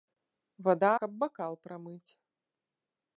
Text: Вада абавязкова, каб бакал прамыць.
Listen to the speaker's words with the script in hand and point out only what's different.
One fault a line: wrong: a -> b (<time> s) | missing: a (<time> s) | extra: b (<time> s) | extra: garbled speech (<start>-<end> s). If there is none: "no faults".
missing: абавязкова (0.9 s)